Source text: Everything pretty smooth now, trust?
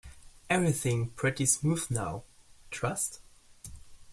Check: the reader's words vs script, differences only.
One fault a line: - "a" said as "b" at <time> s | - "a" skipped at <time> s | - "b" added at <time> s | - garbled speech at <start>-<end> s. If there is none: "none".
none